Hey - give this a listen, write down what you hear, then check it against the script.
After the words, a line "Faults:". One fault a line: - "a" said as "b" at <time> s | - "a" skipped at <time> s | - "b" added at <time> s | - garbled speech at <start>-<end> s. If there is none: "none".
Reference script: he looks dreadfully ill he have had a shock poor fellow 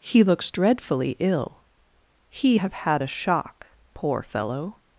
he looks dreadfully ill he have had a shock poor fellow
Faults:
none